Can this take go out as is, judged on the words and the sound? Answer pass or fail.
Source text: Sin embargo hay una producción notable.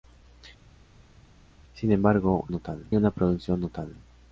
fail